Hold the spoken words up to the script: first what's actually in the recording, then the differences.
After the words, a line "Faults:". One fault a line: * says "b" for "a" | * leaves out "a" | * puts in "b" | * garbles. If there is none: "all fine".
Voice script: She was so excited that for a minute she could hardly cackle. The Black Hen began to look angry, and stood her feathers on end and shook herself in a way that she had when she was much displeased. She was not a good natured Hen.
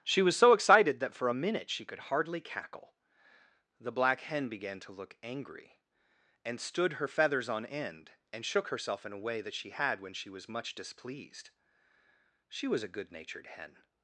She was so excited that for a minute she could hardly cackle. The Black Hen began to look angry, and stood her feathers on end and shook herself in a way that she had when she was much displeased. She was a good natured Hen.
Faults:
* leaves out "not"